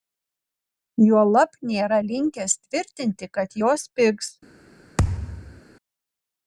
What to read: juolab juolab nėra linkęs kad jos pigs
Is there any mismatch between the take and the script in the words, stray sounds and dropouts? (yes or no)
yes